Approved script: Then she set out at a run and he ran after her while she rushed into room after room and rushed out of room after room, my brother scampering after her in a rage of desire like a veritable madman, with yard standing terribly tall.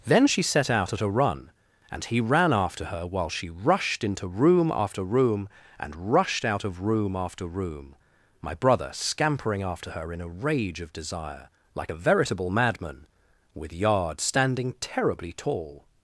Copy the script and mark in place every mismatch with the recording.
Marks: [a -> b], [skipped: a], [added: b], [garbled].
Then she set out at a run and he ran after her while she rushed into room after room and rushed out of room after room, my brother scampering after her in a rage of desire like a veritable madman, with yard standing terribly tall.